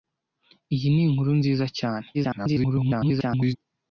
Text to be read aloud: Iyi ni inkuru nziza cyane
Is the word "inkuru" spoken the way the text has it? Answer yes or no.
yes